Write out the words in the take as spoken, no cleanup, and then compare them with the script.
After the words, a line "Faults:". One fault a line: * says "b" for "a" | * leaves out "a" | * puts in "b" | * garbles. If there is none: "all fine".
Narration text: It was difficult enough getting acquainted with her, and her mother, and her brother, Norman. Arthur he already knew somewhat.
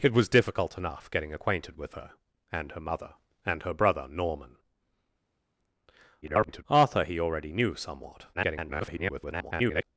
It was difficult enough getting acquainted with her, and her mother, and her brother, Norman. [garbled] Arthur he already knew somewhat. [garbled]
Faults:
* garbles
* garbles